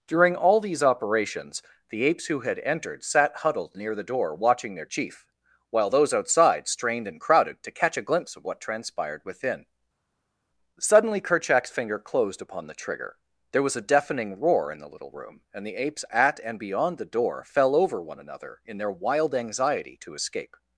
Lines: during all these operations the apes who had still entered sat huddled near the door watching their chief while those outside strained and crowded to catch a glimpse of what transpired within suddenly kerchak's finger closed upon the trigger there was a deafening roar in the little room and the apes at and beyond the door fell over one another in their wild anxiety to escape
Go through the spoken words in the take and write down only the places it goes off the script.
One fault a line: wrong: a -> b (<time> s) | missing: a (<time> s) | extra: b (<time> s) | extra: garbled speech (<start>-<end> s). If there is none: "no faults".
missing: still (2.6 s)